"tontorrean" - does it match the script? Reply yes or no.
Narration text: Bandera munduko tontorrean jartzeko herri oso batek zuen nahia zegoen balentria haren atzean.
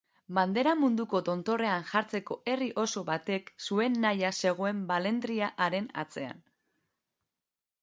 yes